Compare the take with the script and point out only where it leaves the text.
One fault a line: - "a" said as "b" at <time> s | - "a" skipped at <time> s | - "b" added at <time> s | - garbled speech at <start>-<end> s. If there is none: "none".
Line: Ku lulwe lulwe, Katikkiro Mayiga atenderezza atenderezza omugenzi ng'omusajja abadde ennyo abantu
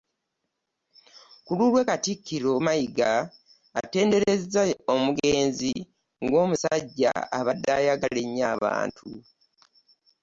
- "lulwe" skipped at 1.8 s
- "atenderezza" skipped at 4.6 s
- "ayagala" added at 7.8 s